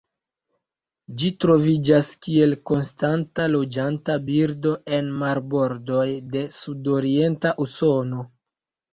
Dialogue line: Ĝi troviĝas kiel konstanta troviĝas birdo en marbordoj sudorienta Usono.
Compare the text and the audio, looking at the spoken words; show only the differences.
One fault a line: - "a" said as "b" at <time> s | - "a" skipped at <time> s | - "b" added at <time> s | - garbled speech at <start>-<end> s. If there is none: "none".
- "troviĝas" said as "loĝanta" at 3.5 s
- "de" added at 6.3 s